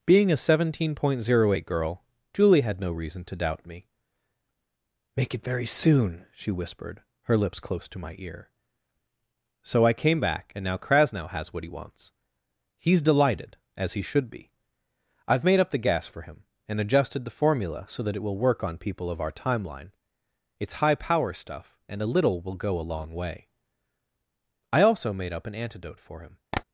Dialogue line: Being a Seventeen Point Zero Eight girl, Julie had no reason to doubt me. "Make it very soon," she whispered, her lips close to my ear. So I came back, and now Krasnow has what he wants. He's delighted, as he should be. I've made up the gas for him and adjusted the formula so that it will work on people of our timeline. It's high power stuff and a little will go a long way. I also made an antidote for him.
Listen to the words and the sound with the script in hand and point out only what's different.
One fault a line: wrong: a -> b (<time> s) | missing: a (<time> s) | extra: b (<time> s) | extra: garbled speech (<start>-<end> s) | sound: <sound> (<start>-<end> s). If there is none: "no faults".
extra: up (25.3 s)
sound: tap (26.5-26.6 s)